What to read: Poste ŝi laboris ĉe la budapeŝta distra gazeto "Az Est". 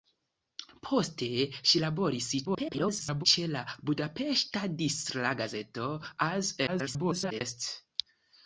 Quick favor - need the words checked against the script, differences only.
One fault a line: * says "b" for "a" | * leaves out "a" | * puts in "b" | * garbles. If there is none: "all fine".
* garbles
* garbles